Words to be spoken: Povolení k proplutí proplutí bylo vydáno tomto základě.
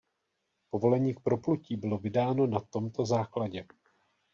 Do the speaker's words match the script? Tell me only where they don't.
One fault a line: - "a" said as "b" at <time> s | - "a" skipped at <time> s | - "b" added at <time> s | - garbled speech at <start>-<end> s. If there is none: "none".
- "proplutí" skipped at 1.8 s
- "na" added at 2.5 s